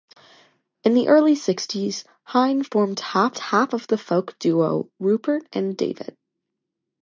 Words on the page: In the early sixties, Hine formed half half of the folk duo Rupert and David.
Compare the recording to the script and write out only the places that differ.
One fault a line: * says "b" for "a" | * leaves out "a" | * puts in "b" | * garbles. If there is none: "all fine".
all fine